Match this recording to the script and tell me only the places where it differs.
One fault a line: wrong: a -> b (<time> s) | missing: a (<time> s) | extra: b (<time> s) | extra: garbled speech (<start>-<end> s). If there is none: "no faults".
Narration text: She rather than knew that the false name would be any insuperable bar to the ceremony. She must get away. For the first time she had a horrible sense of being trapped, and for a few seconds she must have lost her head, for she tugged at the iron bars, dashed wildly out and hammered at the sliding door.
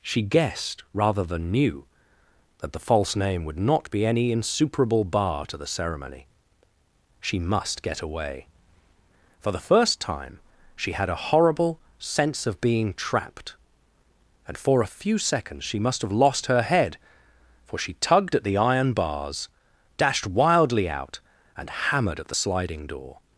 extra: guessed (0.2 s)
extra: not (3.6 s)